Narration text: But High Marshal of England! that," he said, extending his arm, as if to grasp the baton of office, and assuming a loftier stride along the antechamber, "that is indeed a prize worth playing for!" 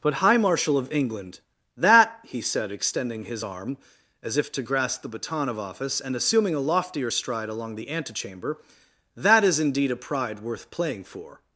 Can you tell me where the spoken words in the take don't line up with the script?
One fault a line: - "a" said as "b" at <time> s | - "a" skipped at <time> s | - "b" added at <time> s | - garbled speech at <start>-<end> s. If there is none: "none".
- "prize" said as "pride" at 10.0 s